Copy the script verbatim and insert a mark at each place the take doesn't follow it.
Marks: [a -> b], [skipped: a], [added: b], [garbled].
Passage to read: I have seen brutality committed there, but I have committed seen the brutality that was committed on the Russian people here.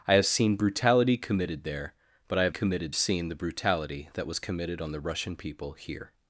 I have seen brutality committed there, but I have committed seen the brutality that was committed on the Russian people here.